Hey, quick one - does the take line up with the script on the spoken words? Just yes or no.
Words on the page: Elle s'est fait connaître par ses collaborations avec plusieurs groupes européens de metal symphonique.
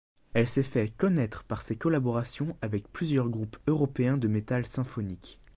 yes